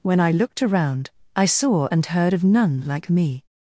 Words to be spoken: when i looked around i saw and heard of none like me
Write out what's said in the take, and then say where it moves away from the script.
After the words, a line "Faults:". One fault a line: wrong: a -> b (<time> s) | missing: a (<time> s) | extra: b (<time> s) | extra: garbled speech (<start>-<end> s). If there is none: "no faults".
when i looked around i saw and heard of none like me
Faults:
no faults